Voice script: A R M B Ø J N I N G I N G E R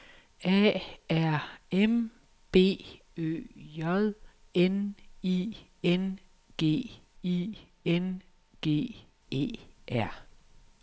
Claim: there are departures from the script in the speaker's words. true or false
false